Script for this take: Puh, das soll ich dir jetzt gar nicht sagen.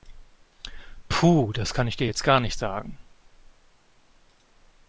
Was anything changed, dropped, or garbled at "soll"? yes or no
yes